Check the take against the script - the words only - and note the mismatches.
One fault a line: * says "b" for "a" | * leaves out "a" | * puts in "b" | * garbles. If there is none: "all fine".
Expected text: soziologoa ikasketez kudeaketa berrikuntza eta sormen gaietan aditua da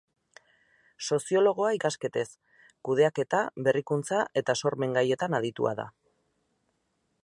all fine